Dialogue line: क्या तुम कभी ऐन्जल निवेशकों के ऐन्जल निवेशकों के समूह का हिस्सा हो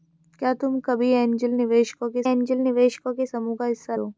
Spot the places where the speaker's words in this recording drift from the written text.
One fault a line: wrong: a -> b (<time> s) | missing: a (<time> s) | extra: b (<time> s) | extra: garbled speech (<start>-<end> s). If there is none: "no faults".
no faults